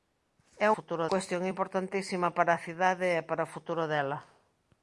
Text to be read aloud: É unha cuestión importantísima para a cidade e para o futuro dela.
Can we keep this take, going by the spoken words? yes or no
no